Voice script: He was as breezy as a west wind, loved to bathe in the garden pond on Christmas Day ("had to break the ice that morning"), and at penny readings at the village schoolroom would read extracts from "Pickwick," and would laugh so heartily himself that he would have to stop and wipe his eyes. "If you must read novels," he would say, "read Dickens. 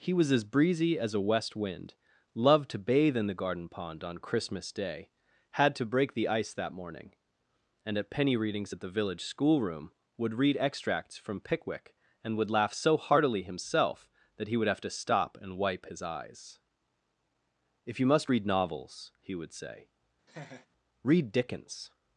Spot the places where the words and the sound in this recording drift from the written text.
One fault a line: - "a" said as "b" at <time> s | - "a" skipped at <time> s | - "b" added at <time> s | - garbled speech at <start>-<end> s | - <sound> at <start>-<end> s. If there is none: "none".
- laugh at 20.3-20.7 s